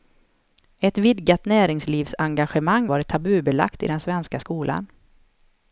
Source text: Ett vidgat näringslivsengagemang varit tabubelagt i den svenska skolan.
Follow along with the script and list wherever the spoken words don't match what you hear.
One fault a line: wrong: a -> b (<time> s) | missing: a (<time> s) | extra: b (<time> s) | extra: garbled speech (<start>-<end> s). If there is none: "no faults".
no faults